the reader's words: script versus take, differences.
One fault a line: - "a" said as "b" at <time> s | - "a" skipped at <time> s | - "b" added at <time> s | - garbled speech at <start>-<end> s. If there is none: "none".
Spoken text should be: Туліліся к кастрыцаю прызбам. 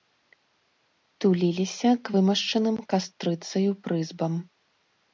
- "вымашчаным" added at 2.1 s